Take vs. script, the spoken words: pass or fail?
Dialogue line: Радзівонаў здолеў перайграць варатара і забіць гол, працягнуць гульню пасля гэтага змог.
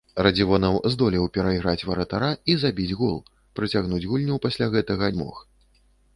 pass